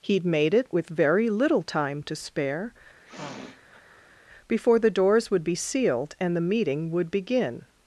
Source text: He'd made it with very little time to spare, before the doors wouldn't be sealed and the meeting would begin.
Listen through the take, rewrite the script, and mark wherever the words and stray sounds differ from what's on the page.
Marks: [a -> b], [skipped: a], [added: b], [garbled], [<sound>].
He'd made it with very little time to spare, [sniff] before the doors [wouldn't -> would] be sealed and the meeting would begin.